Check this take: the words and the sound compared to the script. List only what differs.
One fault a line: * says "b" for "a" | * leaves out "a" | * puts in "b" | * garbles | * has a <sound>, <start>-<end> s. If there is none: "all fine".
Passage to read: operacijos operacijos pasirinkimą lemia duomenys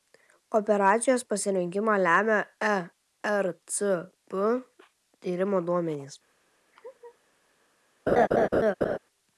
* leaves out "operacijos"
* puts in "ercp tyrimo"
* has a laugh, 6.7-7.2 s
* has a laugh, 8.1-9.0 s